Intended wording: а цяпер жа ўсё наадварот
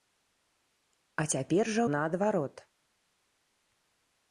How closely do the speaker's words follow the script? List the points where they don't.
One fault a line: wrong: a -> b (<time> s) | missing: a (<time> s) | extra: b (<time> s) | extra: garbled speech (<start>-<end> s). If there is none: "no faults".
missing: ўсё (1.8 s)